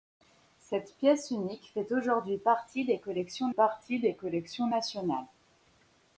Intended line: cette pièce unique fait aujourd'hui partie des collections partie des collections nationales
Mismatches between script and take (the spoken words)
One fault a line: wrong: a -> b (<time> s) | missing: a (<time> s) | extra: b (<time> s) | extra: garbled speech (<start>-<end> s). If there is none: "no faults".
no faults